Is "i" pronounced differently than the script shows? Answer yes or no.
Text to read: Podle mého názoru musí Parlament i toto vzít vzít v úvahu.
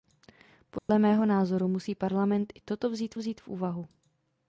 no